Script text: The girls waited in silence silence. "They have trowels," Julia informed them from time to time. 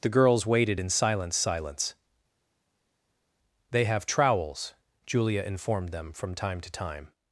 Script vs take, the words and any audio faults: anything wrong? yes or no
no